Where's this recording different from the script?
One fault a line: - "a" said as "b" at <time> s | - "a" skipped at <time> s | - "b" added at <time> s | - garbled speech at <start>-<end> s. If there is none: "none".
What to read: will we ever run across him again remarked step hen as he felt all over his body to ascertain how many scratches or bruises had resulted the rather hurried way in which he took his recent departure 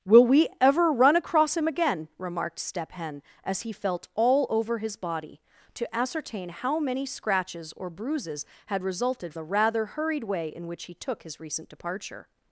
none